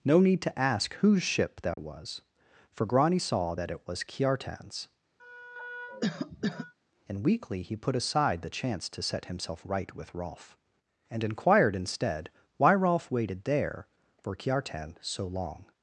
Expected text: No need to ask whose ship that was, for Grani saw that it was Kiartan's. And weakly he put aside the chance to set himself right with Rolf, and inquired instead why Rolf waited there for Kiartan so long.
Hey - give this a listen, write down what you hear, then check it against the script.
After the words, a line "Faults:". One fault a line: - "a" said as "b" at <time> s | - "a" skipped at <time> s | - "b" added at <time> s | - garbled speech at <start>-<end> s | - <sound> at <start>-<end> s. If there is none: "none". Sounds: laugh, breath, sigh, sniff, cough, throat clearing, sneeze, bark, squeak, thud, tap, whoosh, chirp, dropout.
No need to ask whose ship that was, for Grani saw that it was Kiartan's. And weakly he put aside the chance to set himself right with Rolf, and inquired instead why Rolf waited there for Kiartan so long.
Faults:
- dropout at 1.7-1.8 s
- cough at 5.2-6.7 s